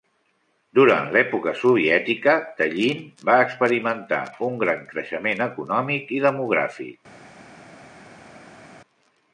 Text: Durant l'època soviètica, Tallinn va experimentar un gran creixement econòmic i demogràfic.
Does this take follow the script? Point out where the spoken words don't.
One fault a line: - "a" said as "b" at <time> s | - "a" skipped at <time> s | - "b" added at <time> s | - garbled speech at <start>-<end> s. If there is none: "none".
none